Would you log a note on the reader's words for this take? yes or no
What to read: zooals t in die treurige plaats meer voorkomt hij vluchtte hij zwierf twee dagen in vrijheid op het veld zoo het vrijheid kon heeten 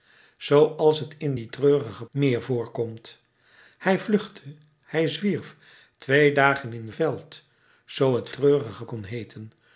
yes